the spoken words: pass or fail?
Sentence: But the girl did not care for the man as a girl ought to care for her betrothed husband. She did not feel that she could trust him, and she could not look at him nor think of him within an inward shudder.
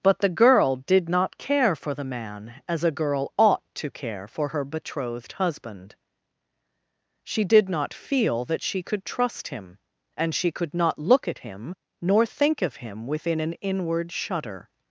pass